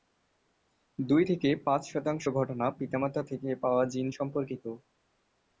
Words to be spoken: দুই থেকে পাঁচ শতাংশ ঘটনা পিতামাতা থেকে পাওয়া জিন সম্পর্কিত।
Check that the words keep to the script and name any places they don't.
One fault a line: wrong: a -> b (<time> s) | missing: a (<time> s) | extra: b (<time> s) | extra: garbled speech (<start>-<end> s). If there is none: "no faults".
no faults